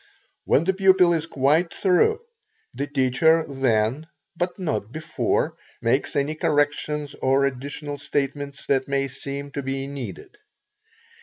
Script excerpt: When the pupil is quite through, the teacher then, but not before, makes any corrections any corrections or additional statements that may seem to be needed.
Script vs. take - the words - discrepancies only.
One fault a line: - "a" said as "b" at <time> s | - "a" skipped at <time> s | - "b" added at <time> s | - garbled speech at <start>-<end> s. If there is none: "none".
- "any corrections" skipped at 7.1 s